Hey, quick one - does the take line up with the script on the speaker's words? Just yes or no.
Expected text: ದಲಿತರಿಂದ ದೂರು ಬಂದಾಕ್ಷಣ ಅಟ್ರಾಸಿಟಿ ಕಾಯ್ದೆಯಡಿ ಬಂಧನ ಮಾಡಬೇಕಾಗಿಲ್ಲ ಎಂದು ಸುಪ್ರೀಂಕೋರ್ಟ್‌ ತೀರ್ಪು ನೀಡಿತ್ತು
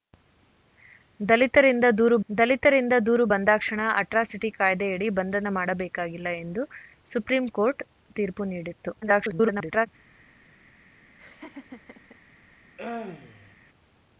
no